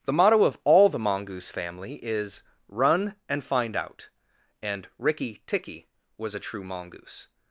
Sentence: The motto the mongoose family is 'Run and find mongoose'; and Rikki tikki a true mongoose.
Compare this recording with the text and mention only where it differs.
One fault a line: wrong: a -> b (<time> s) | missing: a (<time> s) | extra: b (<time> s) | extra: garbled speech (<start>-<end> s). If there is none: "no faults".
extra: of all (0.4 s)
wrong: mongoose -> out (3.8 s)
extra: was (6.2 s)